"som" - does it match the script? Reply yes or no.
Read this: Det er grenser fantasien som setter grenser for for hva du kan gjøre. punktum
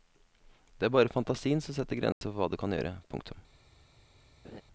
yes